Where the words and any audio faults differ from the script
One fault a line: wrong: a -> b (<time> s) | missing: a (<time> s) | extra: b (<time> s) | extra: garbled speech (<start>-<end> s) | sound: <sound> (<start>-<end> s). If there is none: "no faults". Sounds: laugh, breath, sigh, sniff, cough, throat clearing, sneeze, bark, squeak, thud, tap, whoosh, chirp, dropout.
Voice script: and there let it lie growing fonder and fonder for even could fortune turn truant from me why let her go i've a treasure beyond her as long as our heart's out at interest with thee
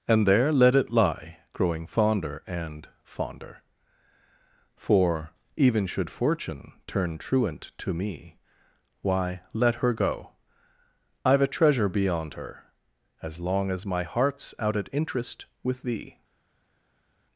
wrong: could -> should (5.8 s)
wrong: from -> to (7.8 s)
wrong: our -> my (13.9 s)